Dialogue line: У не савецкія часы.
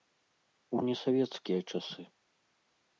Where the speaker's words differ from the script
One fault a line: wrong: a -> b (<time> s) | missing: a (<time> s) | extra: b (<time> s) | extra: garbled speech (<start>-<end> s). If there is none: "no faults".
no faults